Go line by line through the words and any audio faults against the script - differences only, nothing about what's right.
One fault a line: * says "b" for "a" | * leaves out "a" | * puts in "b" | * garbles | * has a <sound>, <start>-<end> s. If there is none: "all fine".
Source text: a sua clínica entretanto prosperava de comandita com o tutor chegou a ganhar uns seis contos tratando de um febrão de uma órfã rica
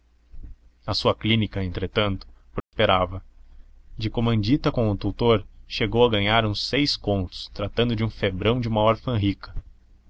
* has a dropout, 2.6-2.7 s